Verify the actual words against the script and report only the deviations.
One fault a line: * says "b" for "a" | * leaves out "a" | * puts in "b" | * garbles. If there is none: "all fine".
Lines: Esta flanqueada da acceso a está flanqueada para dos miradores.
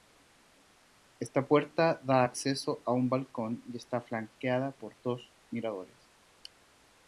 * says "puerta" for "flanqueada"
* puts in "un balcón y"
* says "por" for "para"